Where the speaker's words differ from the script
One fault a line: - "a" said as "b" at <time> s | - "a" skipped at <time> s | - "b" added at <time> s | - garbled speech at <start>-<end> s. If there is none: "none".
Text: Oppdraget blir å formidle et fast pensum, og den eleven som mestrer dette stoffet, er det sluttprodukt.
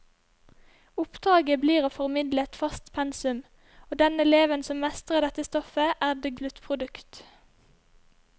none